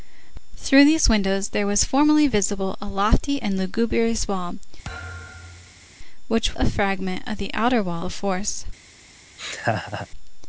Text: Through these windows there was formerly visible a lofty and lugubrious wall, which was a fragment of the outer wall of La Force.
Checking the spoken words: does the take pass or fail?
fail